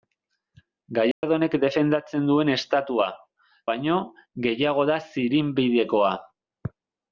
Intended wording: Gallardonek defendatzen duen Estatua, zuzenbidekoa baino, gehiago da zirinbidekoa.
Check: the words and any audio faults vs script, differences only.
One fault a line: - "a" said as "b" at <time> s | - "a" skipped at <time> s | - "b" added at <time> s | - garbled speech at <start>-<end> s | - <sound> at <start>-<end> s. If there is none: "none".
- dropout at 1.1-1.2 s
- "zuzenbidekoa" skipped at 3.1 s